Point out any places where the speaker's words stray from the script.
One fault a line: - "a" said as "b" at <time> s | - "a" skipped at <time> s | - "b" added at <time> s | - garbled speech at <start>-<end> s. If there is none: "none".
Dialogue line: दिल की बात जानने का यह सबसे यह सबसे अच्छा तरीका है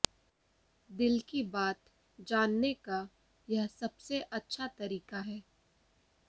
- "यह सबसे" skipped at 4.2 s